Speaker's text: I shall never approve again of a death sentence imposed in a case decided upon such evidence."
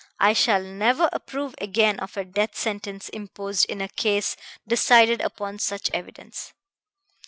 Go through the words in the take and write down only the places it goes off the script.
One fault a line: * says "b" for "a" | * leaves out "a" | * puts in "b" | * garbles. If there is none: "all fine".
all fine